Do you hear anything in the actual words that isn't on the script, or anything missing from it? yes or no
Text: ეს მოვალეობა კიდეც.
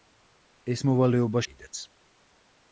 no